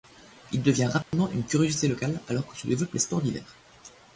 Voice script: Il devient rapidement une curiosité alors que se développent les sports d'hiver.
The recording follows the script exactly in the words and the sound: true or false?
false